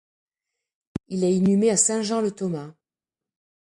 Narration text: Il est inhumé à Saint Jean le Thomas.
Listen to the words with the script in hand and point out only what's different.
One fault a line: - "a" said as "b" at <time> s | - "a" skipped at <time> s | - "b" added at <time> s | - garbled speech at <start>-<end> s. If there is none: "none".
none